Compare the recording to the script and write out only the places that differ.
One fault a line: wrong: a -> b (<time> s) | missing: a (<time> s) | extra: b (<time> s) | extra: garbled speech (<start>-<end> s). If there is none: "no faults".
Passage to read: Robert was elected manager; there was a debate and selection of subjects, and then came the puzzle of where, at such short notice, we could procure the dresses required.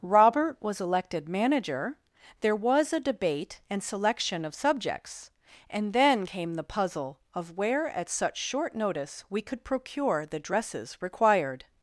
no faults